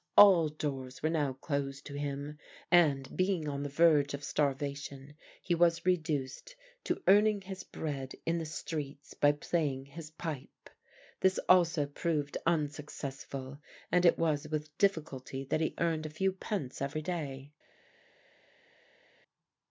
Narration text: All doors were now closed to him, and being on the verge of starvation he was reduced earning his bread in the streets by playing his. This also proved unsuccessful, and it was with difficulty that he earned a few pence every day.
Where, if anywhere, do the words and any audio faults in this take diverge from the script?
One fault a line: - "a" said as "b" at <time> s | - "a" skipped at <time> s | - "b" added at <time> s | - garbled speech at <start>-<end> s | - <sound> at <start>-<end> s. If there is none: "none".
- "to" added at 6.8 s
- "pipe" added at 10.1 s